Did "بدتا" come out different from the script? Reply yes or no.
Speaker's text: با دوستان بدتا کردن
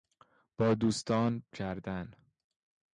yes